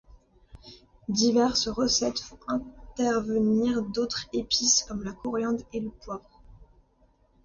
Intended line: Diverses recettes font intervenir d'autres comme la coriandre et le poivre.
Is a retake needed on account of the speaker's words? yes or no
yes